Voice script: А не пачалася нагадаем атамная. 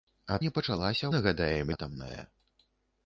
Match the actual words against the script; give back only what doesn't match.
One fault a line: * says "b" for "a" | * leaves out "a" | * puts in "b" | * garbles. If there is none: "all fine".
all fine